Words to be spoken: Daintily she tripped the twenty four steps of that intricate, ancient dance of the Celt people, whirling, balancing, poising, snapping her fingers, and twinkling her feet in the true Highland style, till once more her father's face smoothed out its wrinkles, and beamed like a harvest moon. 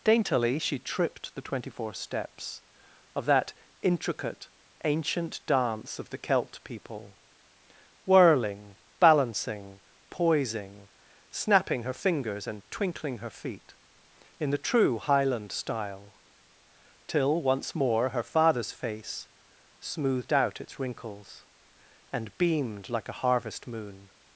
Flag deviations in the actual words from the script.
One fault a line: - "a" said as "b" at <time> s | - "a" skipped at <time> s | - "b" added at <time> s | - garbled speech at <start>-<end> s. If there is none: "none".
none